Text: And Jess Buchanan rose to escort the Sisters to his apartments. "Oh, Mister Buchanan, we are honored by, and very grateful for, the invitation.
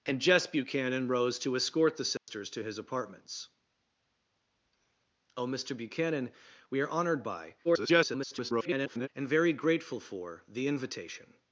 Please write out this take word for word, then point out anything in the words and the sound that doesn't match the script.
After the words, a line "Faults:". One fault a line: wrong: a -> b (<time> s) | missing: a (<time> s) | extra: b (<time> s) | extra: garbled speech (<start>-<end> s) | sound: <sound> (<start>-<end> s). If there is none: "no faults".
And Jess Buchanan rose to escort the Sisters to his apartments. "Oh, Mister Buchanan, we are honored by, [garbled] and very grateful for, the invitation.
Faults:
sound: dropout (2.2-2.3 s)
extra: garbled speech (7.6-9.1 s)